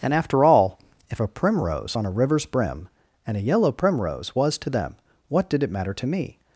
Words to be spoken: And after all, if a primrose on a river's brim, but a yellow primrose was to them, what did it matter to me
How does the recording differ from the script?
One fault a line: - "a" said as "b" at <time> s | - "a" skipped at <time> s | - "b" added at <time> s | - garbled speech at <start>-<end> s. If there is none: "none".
- "but" said as "and" at 3.2 s